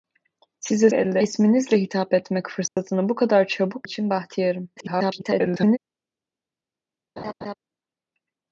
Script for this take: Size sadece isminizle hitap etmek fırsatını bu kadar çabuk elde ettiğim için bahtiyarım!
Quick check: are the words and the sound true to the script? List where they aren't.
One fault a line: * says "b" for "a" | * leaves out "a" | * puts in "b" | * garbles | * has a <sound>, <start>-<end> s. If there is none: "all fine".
* says "elde" for "sadece"
* has a dropout, 2.7-2.8 s
* leaves out "elde ettiğim"
* garbles
* has a laugh, 7.2-7.5 s